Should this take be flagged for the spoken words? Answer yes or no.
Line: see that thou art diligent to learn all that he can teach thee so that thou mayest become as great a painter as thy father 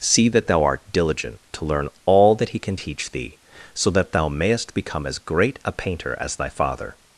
no